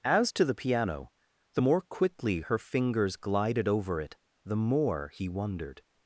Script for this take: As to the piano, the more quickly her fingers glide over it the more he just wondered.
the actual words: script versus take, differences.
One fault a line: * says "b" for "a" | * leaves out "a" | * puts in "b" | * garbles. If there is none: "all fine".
* says "glided" for "glide"
* leaves out "just"